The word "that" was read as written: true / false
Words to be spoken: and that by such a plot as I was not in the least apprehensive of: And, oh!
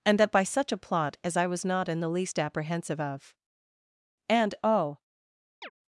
true